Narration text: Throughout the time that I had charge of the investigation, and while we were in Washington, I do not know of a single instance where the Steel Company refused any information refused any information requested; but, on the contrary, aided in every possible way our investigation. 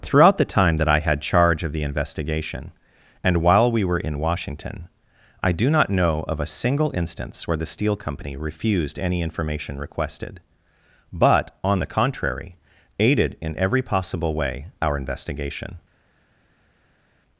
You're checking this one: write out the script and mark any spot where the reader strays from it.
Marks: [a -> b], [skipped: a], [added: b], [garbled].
Throughout the time that I had charge of the investigation, and while we were in Washington, I do not know of a single instance where the Steel Company refused any information [skipped: refused any information] requested; but, on the contrary, aided in every possible way our investigation.